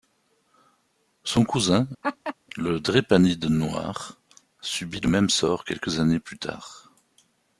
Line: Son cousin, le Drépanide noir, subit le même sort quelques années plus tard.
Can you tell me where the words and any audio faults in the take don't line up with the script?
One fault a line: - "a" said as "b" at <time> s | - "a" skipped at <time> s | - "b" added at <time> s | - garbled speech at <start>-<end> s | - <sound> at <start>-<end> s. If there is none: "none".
- laugh at 2.0-2.3 s